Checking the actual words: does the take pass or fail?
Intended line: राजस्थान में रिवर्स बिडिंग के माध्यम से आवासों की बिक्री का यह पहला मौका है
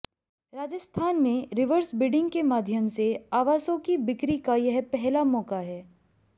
pass